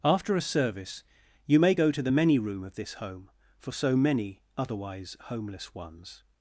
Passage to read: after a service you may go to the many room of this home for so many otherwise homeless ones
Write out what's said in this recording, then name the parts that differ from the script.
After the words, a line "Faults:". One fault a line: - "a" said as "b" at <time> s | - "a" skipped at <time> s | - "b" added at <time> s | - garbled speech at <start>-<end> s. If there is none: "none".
after a service you may go to the many room of this home for so many otherwise homeless ones
Faults:
none